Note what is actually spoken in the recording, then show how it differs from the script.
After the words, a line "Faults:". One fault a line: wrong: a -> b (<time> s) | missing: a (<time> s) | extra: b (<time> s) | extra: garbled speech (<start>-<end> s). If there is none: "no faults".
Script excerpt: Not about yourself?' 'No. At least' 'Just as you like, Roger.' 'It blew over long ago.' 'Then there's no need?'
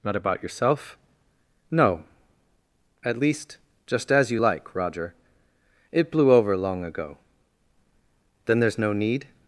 Not about yourself?' 'No. At least' 'Just as you like, Roger.' 'It blew over long ago.' 'Then there's no need?'
Faults:
no faults